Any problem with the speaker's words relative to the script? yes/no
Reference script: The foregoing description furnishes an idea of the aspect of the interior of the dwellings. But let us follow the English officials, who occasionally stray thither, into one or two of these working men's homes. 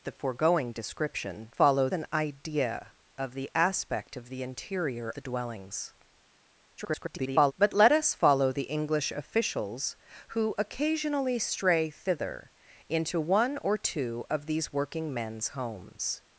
yes